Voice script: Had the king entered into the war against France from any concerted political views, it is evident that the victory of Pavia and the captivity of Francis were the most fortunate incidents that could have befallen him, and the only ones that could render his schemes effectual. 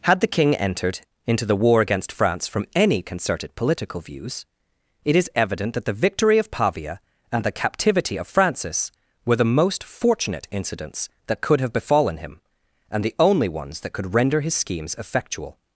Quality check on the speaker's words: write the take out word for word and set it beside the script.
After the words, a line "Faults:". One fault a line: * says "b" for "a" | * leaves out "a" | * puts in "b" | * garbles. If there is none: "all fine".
Had the king entered into the war against France from any concerted political views, it is evident that the victory of Pavia and the captivity of Francis were the most fortunate incidents that could have befallen him, and the only ones that could render his schemes effectual.
Faults:
all fine